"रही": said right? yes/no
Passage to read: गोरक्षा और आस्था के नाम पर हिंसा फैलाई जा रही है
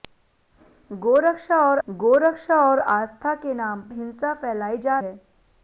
no